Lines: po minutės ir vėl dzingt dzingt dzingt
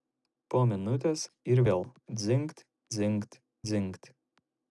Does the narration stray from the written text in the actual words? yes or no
no